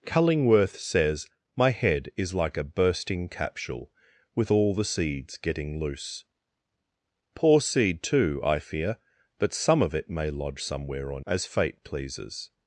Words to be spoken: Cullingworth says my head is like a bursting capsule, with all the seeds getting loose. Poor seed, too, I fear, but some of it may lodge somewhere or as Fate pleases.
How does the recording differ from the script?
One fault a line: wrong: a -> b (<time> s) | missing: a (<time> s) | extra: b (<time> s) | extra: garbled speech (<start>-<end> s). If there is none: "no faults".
no faults